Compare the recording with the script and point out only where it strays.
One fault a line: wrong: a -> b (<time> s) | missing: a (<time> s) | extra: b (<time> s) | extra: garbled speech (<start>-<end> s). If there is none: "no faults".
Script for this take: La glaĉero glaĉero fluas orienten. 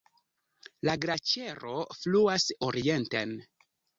missing: glaĉero (1.8 s)